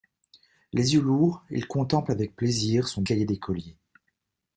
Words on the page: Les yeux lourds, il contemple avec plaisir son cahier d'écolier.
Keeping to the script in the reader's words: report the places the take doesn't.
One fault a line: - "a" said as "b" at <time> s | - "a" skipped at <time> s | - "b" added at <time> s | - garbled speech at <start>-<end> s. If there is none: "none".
none